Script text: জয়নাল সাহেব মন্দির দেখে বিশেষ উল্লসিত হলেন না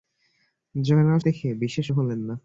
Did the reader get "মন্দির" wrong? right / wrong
wrong